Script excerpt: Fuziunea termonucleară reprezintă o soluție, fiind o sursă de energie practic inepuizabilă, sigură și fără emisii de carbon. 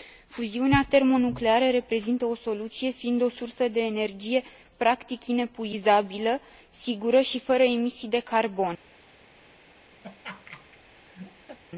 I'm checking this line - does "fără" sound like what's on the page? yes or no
yes